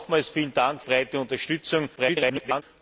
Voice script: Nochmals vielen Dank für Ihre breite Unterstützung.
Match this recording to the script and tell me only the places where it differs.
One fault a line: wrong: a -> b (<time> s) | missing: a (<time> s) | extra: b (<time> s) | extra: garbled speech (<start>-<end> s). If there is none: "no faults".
missing: für Ihre (0.8 s)
extra: garbled speech (2.0-2.6 s)